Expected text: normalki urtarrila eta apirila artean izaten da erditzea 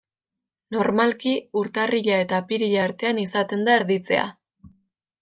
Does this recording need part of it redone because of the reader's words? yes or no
no